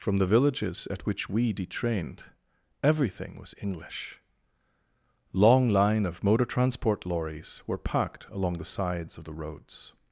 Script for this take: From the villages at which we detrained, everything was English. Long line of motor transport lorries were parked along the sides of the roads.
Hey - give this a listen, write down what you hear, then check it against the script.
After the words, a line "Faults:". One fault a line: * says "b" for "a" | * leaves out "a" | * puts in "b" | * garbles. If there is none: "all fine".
From the villages at which we detrained, everything was English. Long line of motor transport lorries were parked along the sides of the roads.
Faults:
all fine